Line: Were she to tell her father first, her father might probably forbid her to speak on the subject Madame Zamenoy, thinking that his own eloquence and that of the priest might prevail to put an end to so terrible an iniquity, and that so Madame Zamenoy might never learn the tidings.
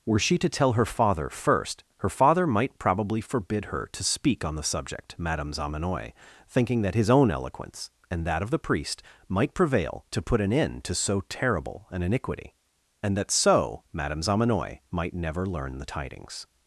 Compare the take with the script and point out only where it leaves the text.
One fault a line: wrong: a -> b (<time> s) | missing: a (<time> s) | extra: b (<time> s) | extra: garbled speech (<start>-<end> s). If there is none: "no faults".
no faults